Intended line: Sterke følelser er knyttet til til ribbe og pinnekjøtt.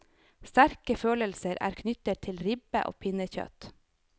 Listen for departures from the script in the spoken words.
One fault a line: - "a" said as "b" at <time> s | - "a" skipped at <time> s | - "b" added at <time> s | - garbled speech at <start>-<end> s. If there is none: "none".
- "til" skipped at 2.4 s